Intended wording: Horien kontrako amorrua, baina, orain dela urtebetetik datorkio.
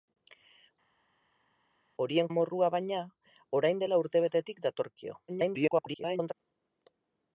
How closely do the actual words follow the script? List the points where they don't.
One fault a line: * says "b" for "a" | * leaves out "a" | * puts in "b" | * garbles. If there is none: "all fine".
* leaves out "kontrako"
* garbles